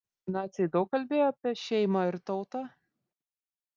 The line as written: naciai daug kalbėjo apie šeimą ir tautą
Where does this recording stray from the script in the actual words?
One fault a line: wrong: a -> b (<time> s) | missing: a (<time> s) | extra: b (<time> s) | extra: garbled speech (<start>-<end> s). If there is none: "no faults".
no faults